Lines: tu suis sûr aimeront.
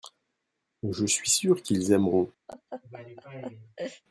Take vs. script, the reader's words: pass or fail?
fail